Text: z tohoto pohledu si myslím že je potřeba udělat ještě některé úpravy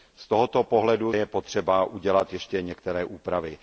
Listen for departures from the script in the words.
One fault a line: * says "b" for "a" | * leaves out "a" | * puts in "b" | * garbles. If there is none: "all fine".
* leaves out "si myslím že"